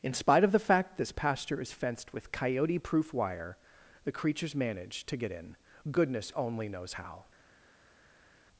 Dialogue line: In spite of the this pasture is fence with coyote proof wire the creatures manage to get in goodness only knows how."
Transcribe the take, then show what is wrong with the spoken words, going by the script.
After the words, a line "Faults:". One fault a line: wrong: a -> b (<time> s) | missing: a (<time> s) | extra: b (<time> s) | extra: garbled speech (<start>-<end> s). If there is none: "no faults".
In spite of the fact this pasture is fenced with coyote proof wire the creatures manage to get in goodness only knows how."
Faults:
extra: fact (0.6 s)
wrong: fence -> fenced (1.7 s)